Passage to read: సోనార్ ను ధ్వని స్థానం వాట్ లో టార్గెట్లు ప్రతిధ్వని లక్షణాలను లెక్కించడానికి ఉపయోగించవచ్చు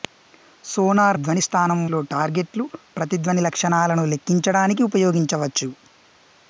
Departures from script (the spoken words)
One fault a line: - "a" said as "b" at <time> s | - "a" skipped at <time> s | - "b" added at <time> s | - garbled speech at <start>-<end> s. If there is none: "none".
- "ను" skipped at 1.2 s
- "వాట్" skipped at 1.8 s